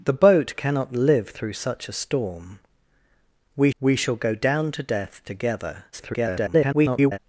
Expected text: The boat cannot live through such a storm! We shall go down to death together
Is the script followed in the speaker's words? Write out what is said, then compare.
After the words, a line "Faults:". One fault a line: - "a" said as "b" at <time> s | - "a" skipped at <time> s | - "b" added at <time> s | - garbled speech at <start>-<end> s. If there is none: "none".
The boat cannot live through such a storm! We we shall go down to death together [garbled]
Faults:
- "we" added at 3.8 s
- garbled speech at 5.9-7.2 s